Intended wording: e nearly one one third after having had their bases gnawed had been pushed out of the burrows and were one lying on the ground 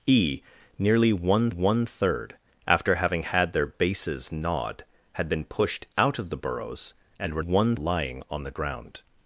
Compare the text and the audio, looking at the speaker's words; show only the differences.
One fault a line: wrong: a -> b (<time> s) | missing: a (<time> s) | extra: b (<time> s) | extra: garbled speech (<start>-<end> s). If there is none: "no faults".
no faults